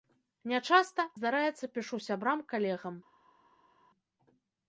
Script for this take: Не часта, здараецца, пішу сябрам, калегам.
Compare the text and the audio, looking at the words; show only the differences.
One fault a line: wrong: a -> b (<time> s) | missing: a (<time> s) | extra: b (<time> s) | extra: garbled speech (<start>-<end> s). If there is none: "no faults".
no faults